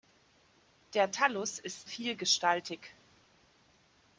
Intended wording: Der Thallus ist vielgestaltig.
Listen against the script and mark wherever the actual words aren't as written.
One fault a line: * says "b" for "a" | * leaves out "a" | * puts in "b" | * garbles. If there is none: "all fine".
all fine